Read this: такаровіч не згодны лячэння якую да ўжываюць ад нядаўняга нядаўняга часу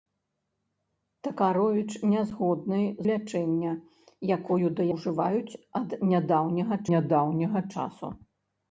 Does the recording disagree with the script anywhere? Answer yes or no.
no